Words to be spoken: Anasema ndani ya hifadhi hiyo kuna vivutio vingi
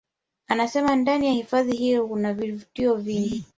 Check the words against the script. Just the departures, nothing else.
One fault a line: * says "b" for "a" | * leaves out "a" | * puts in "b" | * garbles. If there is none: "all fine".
all fine